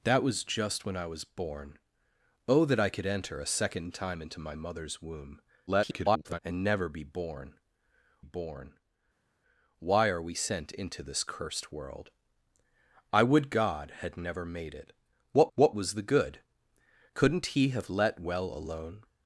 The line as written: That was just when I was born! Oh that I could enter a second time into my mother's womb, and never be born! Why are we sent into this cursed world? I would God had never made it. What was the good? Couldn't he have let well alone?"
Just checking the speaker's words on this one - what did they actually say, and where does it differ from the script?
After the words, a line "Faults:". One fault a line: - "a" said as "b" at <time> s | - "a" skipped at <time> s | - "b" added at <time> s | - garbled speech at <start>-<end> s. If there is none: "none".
That was just when I was born! Oh that I could enter a second time into my mother's womb, [garbled] and never be born born! Why are we sent into this cursed world? I would God had never made it. What what was the good? Couldn't he have let well alone?"
Faults:
- garbled speech at 5.7-6.4 s
- "born" added at 8.2 s
- "what" added at 15.6 s